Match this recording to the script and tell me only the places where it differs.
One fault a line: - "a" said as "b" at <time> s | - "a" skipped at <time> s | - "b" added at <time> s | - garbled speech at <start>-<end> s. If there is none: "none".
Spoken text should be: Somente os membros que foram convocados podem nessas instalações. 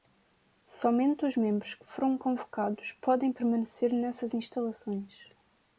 - "permanecer" added at 3.3 s